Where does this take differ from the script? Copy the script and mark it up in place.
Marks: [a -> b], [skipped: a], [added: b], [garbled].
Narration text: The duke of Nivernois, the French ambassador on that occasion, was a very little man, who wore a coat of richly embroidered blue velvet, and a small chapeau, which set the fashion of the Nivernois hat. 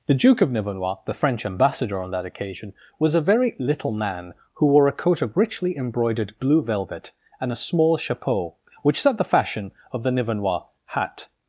The duke of Nivernois, the French ambassador on that occasion, was a very little man, who wore a coat of richly embroidered blue velvet, and a small chapeau, which set the fashion of the Nivernois hat.